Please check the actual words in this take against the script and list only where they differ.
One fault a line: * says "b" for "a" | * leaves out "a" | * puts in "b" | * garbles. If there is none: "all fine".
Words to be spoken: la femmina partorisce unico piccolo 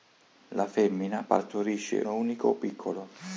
all fine